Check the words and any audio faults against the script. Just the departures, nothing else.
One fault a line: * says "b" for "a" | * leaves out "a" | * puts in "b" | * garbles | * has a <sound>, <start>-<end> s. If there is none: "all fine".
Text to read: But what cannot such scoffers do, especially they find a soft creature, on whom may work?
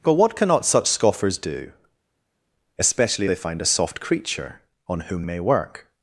all fine